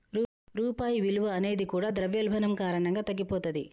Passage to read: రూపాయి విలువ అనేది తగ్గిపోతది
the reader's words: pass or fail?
fail